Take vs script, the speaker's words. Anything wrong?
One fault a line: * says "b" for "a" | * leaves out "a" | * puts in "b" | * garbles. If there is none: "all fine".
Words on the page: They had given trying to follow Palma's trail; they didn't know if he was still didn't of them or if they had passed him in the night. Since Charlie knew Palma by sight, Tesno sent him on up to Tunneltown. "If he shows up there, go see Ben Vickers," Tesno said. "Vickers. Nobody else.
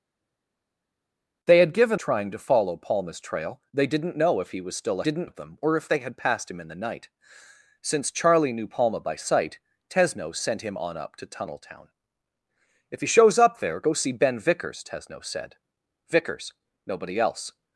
all fine